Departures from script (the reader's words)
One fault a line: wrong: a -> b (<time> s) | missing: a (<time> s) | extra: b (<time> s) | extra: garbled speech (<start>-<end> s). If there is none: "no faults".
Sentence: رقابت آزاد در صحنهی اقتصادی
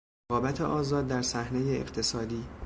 no faults